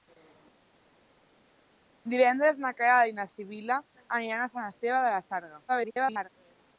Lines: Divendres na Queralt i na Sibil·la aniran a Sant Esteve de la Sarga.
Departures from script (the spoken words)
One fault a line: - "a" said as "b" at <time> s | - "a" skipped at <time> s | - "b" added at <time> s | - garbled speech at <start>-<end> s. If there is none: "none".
- garbled speech at 5.7-6.3 s